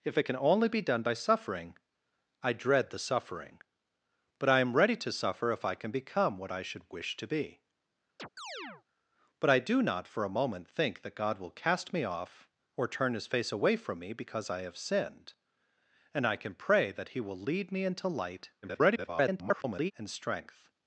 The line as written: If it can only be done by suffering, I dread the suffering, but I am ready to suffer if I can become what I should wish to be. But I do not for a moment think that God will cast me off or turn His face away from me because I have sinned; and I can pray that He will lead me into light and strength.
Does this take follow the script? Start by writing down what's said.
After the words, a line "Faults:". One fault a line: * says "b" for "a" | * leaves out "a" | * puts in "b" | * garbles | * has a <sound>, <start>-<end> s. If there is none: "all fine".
If it can only be done by suffering, I dread the suffering, but I am ready to suffer if I can become what I should wish to be. But I do not for a moment think that God will cast me off or turn His face away from me because I have sinned; and I can pray that He will lead me into light [garbled] and strength.
Faults:
* has a chirp, 8.2-8.8 s
* garbles